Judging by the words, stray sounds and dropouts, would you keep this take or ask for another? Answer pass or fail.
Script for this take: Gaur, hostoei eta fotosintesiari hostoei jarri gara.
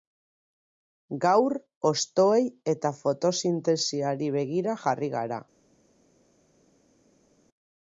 fail